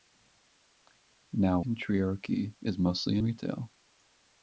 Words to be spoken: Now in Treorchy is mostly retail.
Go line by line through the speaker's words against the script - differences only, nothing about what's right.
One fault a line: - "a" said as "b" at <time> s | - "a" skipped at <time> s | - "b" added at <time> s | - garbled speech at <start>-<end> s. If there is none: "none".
none